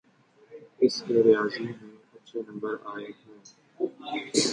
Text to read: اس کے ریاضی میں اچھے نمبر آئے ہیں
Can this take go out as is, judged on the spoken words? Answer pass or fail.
pass